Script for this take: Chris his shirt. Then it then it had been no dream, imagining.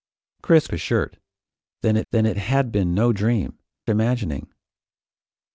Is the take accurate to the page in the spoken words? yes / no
yes